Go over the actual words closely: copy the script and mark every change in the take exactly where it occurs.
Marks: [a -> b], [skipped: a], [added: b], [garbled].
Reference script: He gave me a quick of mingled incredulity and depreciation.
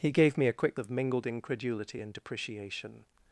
He gave me a quick of mingled incredulity and depreciation.